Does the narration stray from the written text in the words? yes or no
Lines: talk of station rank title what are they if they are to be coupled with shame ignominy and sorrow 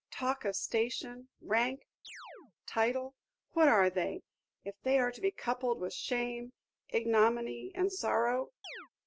no